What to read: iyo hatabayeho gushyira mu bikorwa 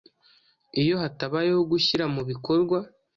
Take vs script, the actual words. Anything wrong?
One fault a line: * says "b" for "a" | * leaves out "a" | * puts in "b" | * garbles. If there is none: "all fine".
all fine